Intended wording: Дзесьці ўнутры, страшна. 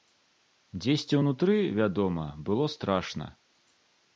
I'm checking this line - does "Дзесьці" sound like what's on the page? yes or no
yes